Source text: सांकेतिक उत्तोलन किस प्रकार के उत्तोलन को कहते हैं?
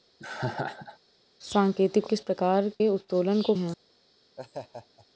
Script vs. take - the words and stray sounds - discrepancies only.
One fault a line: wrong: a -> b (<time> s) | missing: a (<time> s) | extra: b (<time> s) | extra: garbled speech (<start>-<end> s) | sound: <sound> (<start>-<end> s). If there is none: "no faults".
sound: laugh (0.2-1.0 s)
missing: उत्तोलन (2.1 s)
missing: के (2.7 s)
missing: कहते (3.5 s)
sound: laugh (4.4-5.1 s)